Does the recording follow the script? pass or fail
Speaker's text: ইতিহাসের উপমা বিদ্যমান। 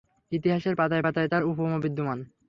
fail